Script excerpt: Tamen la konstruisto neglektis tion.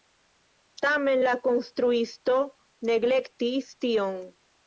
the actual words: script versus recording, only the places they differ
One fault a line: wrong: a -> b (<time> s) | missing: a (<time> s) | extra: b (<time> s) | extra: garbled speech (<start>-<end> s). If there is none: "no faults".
no faults